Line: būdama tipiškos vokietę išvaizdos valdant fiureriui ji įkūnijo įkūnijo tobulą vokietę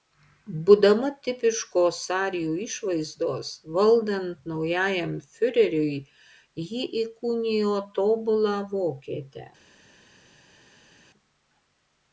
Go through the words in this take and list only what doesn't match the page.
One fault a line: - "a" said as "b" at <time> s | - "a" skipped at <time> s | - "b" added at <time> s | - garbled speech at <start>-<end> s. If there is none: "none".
- "vokietę" said as "arijų" at 2.1 s
- "naujajam" added at 4.5 s
- "įkūnijo" skipped at 7.8 s